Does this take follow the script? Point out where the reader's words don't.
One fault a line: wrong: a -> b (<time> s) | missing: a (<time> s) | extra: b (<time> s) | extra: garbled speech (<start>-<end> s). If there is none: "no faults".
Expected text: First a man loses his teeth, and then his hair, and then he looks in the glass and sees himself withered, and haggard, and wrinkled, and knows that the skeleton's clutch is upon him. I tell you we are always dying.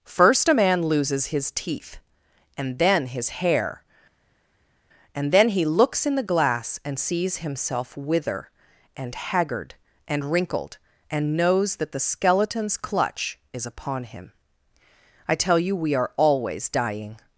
wrong: withered -> wither (8.0 s)